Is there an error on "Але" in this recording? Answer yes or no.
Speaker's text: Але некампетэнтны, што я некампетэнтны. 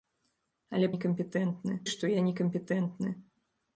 no